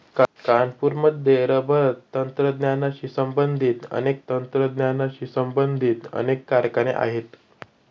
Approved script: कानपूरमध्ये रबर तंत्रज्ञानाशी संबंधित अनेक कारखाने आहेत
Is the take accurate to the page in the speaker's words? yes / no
no